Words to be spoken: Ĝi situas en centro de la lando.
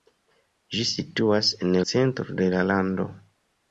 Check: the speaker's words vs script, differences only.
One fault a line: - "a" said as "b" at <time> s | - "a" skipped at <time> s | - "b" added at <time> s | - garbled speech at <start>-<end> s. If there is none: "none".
none